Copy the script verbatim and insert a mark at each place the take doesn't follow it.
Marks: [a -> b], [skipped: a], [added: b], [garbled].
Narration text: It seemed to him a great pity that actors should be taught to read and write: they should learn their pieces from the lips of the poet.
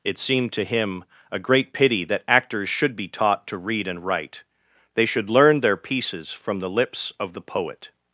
It seemed to him a great pity that actors should be taught to read and write: they should learn their pieces from the lips of the poet.